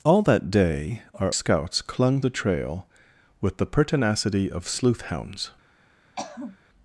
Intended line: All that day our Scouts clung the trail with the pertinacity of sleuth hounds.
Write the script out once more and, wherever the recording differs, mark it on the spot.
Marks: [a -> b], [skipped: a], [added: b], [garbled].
All that day our Scouts clung the trail with the pertinacity of sleuth hounds.